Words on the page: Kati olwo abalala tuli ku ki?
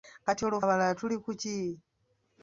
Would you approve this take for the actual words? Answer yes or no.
yes